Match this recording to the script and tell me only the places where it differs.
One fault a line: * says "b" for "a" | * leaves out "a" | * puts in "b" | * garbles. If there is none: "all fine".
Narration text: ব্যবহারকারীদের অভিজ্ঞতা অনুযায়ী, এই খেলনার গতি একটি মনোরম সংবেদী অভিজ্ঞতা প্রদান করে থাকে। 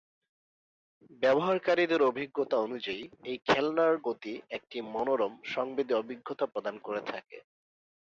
all fine